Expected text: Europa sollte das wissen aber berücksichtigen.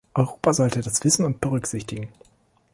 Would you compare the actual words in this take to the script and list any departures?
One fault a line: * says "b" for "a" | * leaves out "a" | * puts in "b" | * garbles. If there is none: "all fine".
* says "und" for "aber"